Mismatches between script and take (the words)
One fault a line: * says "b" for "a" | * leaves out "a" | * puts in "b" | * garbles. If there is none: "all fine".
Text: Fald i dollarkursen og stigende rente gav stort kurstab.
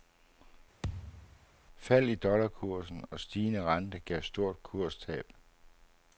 all fine